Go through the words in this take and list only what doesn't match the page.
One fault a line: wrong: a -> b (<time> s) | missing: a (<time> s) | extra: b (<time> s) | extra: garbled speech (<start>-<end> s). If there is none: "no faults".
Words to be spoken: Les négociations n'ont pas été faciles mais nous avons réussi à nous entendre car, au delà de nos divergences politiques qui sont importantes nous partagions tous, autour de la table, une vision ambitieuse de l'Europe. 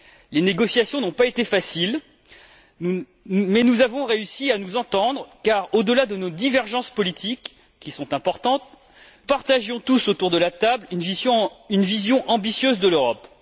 missing: nous (8.6 s)